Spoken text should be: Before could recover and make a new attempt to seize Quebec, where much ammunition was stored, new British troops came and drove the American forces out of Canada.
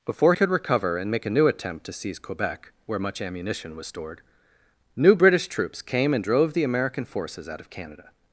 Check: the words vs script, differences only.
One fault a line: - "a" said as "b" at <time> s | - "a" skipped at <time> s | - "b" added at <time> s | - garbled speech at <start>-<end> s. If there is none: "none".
none